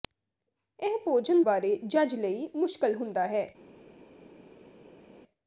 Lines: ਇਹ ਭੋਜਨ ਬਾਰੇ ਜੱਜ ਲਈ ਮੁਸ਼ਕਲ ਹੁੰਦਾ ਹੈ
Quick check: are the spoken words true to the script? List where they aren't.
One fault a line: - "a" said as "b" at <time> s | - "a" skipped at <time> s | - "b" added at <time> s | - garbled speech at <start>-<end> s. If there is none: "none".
none